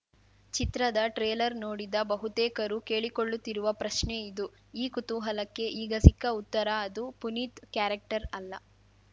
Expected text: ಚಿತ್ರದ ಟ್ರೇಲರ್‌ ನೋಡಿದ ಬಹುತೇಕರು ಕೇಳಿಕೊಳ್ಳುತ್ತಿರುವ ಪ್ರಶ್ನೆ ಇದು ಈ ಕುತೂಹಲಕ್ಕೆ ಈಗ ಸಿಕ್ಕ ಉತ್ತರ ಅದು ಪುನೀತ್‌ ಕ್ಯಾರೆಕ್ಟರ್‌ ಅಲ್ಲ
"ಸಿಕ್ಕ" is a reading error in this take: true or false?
false